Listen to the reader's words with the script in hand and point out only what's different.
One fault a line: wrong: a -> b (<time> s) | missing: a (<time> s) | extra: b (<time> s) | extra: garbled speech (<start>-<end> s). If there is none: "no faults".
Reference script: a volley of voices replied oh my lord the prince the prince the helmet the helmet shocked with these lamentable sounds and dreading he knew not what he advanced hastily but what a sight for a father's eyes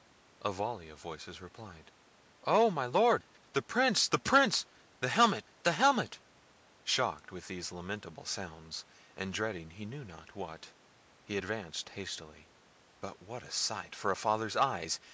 no faults